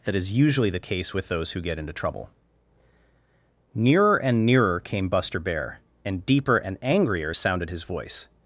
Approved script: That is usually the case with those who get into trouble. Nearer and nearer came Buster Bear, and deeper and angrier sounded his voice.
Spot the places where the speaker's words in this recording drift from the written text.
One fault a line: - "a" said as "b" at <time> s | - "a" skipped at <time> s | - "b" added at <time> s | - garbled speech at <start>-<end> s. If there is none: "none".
none